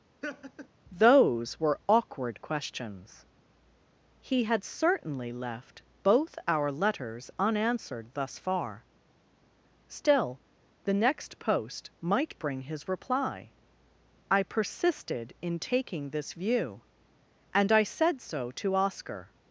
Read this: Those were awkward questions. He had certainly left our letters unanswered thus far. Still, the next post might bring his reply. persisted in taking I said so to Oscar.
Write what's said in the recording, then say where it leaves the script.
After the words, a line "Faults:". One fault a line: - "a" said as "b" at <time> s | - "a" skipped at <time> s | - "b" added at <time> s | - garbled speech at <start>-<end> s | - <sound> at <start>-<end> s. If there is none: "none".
Those were awkward questions. He had certainly left both our letters unanswered thus far. Still, the next post might bring his reply. I persisted in taking this view; and I said so to Oscar.
Faults:
- laugh at 0.2-0.7 s
- "both" added at 6.0 s
- "I" added at 14.3 s
- "this view and" added at 16.1 s